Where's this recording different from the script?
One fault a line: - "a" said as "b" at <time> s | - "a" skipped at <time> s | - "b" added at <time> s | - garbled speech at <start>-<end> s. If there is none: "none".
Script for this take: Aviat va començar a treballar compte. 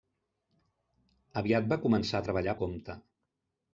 none